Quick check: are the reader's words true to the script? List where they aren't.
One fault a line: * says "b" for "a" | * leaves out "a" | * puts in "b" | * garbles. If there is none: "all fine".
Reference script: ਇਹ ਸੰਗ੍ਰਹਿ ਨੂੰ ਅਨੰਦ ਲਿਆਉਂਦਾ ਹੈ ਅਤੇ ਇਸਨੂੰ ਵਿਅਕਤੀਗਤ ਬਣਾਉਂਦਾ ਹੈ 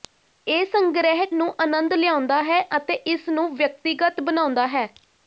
all fine